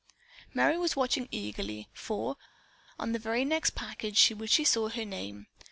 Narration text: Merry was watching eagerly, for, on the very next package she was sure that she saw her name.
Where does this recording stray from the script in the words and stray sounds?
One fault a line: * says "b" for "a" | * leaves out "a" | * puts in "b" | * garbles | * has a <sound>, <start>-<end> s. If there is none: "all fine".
* leaves out "sure that"